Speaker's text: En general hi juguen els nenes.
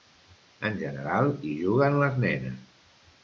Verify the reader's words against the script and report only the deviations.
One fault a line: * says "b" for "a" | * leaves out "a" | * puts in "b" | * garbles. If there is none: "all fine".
* says "les" for "els"